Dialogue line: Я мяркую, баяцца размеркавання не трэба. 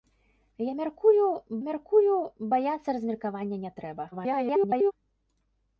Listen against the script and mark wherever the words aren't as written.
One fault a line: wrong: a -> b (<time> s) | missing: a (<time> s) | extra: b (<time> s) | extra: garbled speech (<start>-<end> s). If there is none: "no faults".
extra: мяркую (1.7 s)
extra: garbled speech (4.1-4.9 s)